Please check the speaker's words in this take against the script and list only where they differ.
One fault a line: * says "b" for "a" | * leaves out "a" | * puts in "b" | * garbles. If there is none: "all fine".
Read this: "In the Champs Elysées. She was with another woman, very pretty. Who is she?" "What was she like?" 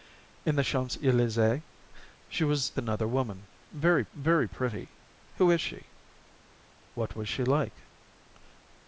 * leaves out "with"
* puts in "very"